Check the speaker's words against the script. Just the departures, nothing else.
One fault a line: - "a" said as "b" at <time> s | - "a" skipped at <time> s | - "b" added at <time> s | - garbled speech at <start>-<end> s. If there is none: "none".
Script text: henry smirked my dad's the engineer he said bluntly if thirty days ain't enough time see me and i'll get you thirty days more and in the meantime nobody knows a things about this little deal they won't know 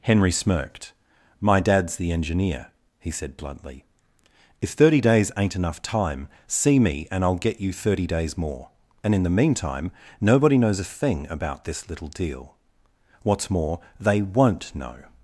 - "things" said as "thing" at 10.9 s
- "what's more" added at 13.2 s